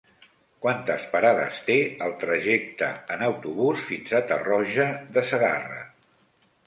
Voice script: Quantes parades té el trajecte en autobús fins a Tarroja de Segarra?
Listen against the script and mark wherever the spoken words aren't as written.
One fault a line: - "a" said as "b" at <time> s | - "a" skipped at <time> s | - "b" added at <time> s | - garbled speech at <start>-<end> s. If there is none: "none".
none